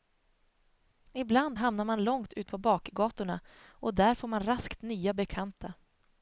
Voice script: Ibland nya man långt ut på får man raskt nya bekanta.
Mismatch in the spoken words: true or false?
true